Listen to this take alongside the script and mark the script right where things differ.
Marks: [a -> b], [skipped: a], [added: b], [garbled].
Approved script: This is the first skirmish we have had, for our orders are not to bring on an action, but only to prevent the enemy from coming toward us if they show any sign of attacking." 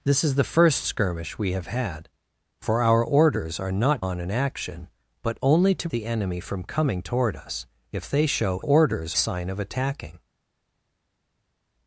This is the first skirmish we have had, for our orders are not [skipped: to bring] on an action, but only to [skipped: prevent] the enemy from coming toward us if they show [any -> orders] sign of attacking."